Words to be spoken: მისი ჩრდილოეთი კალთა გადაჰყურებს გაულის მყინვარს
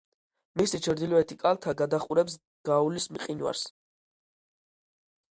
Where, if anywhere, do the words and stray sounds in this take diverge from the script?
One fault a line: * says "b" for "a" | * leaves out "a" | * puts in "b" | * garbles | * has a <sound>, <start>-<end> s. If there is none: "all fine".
all fine